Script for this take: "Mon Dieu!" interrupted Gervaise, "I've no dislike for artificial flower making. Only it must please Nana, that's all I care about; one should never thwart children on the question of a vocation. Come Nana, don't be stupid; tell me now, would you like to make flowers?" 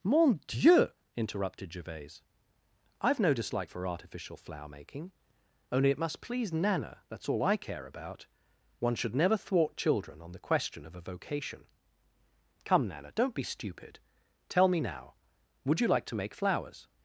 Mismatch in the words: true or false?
false